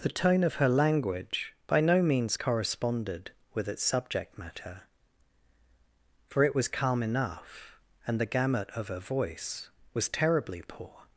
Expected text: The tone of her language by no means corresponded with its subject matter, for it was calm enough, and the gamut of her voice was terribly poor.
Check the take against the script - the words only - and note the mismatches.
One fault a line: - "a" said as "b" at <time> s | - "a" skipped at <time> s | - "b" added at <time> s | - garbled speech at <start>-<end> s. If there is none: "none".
none